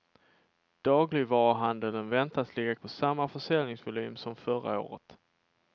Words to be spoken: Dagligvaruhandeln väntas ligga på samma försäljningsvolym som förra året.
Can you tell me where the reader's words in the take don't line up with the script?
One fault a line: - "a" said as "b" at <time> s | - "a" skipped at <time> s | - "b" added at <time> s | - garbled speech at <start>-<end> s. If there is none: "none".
none